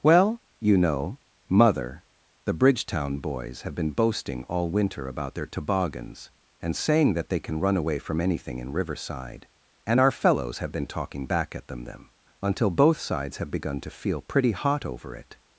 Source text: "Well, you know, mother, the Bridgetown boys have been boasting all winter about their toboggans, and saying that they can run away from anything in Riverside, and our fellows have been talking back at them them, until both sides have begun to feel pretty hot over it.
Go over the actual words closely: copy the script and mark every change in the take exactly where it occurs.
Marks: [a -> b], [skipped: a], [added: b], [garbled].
"Well, you know, mother, the Bridgetown boys have been boasting all winter about their toboggans, and saying that they can run away from anything in Riverside, and our fellows have been talking back at them them, until both sides have begun to feel pretty hot over it.